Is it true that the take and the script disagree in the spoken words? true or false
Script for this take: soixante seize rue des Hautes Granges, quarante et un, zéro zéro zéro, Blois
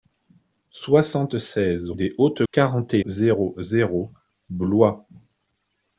true